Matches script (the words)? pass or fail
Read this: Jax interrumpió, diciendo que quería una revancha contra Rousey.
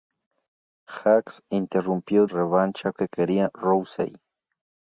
fail